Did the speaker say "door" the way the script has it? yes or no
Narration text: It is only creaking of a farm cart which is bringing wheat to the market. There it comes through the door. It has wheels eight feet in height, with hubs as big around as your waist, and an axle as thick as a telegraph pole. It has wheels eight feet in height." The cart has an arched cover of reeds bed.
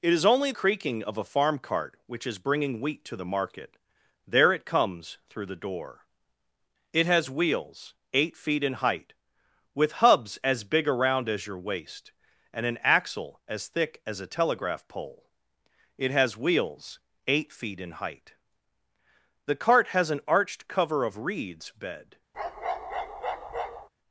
yes